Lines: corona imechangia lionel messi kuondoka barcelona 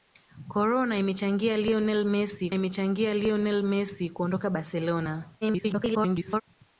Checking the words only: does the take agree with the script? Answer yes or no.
no